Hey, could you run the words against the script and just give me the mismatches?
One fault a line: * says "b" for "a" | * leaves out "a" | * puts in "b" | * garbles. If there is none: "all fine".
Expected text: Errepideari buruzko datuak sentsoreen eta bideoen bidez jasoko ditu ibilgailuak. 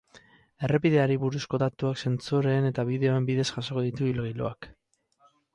all fine